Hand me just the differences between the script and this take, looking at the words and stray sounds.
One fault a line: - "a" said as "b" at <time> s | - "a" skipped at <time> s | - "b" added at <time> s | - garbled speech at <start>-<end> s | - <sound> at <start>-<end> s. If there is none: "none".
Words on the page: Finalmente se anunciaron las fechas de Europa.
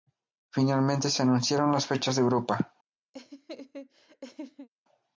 - laugh at 3.1-4.7 s